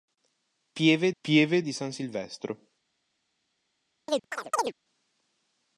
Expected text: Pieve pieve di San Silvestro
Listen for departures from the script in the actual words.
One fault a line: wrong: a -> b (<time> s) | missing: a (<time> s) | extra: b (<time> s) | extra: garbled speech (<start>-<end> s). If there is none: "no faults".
no faults